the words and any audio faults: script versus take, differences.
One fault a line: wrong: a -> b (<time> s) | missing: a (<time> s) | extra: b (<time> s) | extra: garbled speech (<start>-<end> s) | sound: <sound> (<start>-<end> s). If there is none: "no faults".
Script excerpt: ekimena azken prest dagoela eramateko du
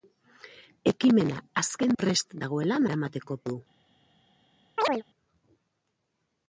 sound: chirp (4.8-5.0 s)